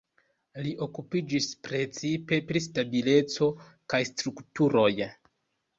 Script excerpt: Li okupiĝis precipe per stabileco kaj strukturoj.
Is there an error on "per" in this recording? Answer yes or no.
yes